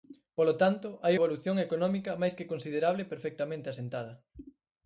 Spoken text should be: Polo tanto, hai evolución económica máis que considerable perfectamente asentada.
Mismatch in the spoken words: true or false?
false